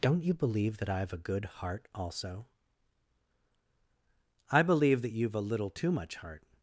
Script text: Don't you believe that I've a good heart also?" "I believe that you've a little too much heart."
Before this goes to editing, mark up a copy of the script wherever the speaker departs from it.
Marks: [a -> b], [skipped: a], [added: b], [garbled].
Don't you believe that I've a good heart also?" "I believe that you've a little too much heart."